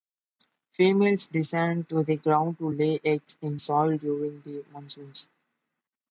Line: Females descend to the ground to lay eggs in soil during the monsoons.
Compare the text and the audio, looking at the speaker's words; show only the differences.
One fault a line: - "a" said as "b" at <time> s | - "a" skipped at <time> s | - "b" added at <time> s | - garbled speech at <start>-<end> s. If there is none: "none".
none